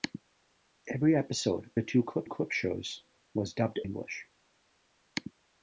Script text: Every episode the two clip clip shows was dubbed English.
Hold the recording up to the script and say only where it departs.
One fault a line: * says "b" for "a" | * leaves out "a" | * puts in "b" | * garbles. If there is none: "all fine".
all fine